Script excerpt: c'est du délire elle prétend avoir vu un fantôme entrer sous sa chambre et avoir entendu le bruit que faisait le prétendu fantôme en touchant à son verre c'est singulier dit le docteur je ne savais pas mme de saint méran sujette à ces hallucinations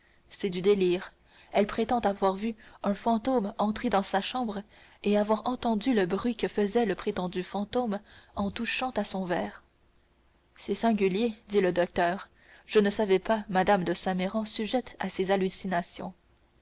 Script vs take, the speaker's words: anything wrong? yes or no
yes